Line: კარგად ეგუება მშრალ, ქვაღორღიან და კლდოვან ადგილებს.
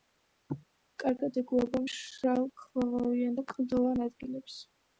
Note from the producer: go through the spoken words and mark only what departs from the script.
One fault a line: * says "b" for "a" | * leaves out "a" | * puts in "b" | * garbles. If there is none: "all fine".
all fine